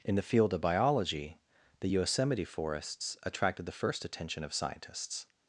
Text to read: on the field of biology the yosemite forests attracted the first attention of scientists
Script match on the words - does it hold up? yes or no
no